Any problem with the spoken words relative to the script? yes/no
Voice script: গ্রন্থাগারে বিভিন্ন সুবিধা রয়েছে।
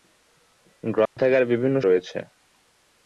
yes